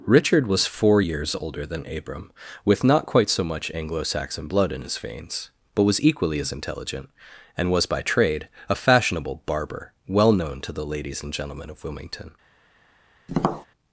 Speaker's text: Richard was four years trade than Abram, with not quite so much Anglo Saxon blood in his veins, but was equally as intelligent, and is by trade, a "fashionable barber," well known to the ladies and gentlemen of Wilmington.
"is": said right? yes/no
no